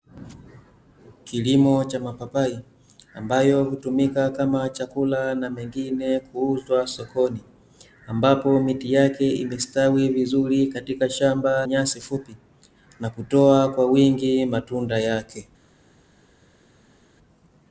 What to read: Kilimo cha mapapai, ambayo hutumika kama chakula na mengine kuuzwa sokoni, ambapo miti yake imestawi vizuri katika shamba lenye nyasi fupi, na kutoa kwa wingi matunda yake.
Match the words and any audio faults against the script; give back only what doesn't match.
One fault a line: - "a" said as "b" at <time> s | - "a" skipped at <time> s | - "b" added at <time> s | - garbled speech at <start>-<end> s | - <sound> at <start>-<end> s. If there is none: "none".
- "lenye" skipped at 11.7 s